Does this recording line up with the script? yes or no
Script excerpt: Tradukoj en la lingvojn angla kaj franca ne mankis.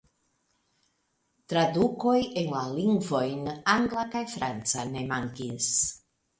yes